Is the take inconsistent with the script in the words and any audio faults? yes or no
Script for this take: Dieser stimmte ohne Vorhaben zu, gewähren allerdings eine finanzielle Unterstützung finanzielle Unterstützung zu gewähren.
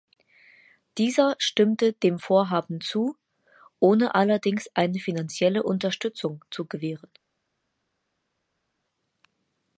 yes